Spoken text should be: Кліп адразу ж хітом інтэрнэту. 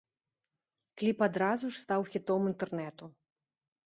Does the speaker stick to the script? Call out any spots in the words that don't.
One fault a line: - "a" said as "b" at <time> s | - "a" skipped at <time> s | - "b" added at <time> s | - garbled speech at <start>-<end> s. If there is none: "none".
- "стаў" added at 1.8 s